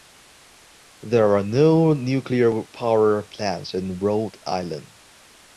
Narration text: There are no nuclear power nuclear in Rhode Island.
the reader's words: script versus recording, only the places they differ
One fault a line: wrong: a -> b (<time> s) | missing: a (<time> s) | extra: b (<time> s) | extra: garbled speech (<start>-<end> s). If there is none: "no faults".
wrong: nuclear -> plants (3.2 s)